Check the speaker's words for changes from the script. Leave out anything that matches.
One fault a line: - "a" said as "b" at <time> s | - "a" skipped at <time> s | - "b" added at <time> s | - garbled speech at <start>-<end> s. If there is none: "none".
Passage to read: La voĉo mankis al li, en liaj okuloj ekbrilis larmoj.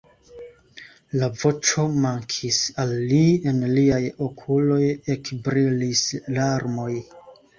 none